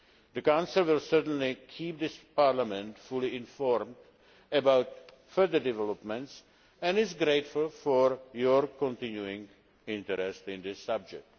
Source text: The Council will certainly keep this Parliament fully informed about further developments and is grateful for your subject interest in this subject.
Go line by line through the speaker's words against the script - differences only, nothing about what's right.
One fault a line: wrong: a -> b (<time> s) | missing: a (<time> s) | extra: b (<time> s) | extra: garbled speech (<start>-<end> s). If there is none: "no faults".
wrong: subject -> continuing (8.7 s)